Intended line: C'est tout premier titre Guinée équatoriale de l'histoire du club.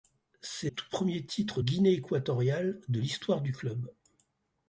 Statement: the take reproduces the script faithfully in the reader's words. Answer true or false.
true